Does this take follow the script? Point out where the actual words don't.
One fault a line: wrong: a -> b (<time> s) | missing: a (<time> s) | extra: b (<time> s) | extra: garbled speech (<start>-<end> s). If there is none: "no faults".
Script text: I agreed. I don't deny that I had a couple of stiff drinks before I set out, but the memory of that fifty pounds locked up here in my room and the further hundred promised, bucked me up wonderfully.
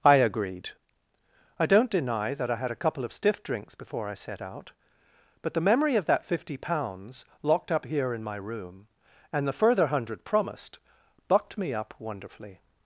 no faults